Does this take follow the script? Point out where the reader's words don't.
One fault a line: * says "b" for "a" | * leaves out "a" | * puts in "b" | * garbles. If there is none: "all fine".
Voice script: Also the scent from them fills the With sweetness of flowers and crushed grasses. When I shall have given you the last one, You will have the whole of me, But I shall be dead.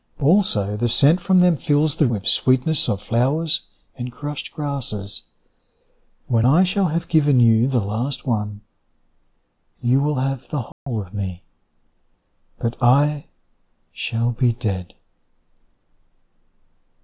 all fine